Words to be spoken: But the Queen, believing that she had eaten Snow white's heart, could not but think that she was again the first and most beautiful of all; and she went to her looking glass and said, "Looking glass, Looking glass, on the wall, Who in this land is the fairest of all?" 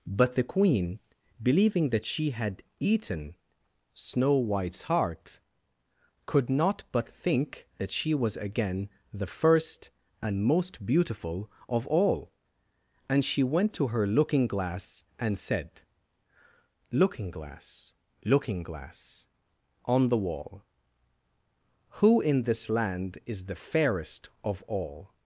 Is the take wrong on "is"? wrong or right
right